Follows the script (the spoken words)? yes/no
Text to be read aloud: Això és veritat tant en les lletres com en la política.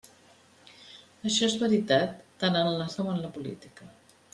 no